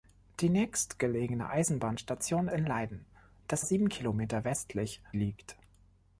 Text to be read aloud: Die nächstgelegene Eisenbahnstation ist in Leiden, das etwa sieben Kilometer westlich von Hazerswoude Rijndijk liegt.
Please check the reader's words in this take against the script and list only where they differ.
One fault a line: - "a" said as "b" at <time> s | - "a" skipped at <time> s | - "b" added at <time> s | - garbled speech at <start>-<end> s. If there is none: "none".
- "ist" skipped at 2.5 s
- "etwa" skipped at 3.6 s
- "von Hazerswoude Rijndijk" skipped at 5.0 s